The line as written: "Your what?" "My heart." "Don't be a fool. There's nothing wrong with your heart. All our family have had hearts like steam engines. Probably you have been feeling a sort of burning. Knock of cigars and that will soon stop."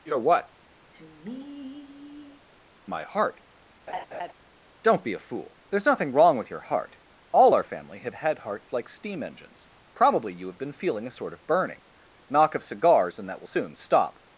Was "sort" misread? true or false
false